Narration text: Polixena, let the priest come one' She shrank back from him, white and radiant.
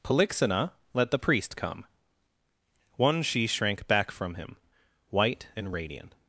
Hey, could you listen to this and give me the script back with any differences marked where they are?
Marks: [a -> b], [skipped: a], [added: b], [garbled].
Polixena, let the priest come one' She shrank back from him, white and radiant.